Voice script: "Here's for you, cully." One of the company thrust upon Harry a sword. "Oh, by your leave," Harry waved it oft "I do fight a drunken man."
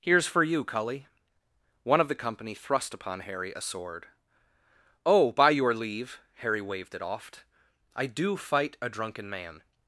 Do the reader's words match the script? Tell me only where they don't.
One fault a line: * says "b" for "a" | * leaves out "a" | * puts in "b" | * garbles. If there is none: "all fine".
all fine